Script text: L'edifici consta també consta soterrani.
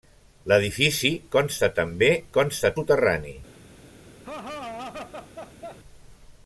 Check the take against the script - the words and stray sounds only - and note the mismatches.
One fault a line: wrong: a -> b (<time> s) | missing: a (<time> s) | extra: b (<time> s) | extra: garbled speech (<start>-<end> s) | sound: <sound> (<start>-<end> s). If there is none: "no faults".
sound: laugh (4.2-5.8 s)